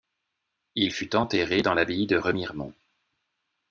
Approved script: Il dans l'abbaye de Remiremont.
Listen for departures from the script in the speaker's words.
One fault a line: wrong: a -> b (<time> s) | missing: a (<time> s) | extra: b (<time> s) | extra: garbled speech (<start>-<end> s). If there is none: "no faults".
extra: fut enterré (0.9 s)